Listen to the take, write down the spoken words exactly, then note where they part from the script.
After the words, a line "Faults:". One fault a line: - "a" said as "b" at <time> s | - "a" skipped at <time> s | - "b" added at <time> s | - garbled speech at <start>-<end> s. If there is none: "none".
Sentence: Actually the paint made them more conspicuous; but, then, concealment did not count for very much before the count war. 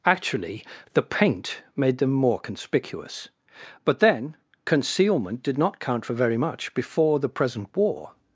Actually the paint made them more conspicuous; but, then, concealment did not count for very much before the present war.
Faults:
- "count" said as "present" at 7.3 s